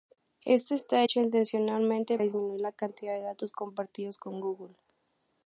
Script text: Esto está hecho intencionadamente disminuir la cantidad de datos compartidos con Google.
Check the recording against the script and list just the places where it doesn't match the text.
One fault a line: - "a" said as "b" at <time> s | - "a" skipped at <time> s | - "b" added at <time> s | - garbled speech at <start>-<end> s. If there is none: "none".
none